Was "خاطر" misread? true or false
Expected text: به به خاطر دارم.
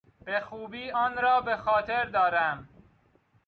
false